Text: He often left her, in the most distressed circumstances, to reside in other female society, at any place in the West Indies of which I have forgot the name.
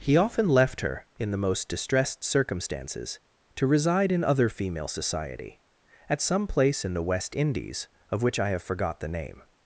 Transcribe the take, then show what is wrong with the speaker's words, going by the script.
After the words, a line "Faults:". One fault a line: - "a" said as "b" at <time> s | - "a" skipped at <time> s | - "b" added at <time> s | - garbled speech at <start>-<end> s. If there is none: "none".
He often left her, in the most distressed circumstances, to reside in other female society, at some place in the West Indies of which I have forgot the name.
Faults:
- "any" said as "some" at 6.2 s